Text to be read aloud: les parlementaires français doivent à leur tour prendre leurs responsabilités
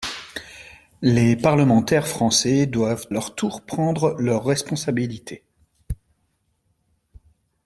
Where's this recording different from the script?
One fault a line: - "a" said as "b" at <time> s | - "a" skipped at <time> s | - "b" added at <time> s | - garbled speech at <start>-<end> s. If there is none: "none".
- "à" skipped at 3.1 s